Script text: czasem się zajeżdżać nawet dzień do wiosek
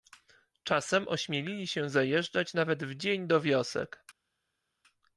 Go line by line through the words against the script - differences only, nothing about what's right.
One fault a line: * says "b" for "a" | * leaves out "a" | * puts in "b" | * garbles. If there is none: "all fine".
* puts in "ośmielili"
* puts in "w"